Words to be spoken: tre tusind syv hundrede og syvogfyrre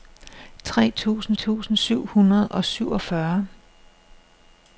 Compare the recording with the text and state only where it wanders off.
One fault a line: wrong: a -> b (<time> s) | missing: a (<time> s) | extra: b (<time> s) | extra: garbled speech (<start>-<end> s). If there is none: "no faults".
extra: tusind (1.3 s)